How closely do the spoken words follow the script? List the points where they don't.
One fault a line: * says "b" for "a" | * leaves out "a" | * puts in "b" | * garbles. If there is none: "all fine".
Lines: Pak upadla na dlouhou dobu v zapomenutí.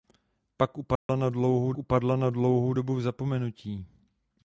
* puts in "upadla na dlouhou"